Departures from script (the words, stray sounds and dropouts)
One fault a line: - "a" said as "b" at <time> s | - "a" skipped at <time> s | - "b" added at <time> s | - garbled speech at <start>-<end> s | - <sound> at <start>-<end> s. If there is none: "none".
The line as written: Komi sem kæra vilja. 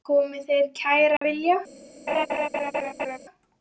- "þeir" added at 0.5 s
- dropout at 1.2-1.2 s
- laugh at 2.1-3.2 s